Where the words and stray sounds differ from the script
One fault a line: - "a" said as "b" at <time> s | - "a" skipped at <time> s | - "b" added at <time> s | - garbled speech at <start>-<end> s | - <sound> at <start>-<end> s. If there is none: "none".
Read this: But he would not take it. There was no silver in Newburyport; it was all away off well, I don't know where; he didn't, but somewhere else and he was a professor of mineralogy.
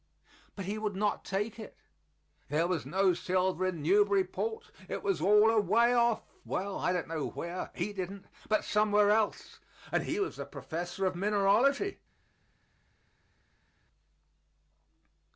none